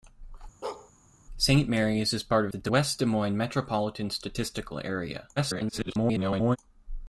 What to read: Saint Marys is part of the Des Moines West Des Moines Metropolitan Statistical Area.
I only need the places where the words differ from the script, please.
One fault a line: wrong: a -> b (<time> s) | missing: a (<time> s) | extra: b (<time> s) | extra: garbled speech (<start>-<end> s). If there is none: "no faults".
missing: of (2.5 s)
missing: Moines (2.7 s)
extra: garbled speech (5.4-6.6 s)